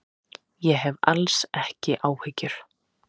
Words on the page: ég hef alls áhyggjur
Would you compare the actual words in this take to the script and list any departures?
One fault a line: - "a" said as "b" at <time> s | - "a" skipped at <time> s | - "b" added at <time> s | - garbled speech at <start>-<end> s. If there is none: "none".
- "ekki" added at 1.6 s